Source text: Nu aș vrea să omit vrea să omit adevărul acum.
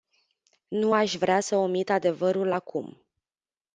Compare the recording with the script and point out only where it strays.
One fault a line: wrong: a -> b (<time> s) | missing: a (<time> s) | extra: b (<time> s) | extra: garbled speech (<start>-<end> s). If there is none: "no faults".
missing: vrea să omit (1.9 s)